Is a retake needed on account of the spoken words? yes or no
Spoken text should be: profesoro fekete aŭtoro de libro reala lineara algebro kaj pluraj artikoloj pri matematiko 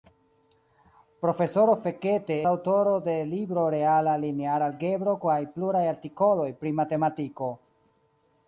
no